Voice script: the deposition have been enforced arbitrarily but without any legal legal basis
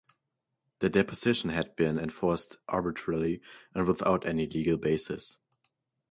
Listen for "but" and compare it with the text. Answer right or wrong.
wrong